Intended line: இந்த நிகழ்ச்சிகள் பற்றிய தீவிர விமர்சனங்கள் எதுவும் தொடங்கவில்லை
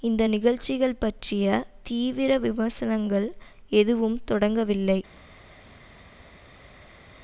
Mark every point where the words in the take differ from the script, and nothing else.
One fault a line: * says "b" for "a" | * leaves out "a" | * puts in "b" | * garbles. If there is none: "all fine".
all fine